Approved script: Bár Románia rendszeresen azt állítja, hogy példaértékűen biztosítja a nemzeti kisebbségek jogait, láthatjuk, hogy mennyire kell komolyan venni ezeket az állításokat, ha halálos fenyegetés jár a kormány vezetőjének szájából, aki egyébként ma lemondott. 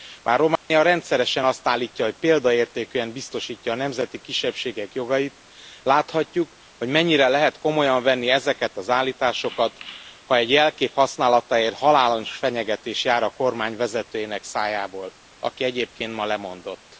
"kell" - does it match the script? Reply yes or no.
no